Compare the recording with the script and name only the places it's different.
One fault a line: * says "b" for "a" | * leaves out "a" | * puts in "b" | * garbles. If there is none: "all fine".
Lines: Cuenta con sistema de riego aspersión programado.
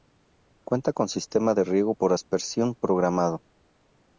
* puts in "por"